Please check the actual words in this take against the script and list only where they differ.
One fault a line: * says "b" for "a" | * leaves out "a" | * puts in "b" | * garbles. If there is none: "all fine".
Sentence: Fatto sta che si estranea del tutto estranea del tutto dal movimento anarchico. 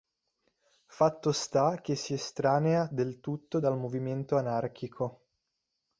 * leaves out "estranea del tutto"